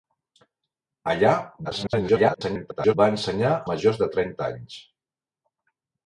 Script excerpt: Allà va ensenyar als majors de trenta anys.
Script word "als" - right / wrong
wrong